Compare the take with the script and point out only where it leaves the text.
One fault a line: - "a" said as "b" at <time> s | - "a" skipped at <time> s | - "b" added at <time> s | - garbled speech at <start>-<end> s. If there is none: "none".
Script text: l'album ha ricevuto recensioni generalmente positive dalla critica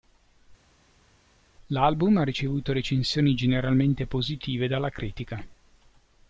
none